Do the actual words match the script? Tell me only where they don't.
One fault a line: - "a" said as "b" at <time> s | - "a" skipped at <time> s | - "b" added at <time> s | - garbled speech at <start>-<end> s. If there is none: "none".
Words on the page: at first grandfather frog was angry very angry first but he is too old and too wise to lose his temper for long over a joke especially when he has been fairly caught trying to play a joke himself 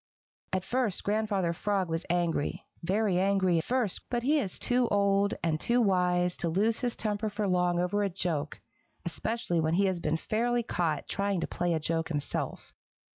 none